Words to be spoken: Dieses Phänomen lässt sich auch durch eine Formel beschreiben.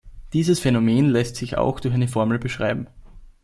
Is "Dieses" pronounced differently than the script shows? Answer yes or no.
no